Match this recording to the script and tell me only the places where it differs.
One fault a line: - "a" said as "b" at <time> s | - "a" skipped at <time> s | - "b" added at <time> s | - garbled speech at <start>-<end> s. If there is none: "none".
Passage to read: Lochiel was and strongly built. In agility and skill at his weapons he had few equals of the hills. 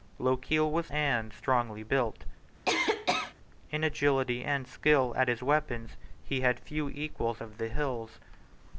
none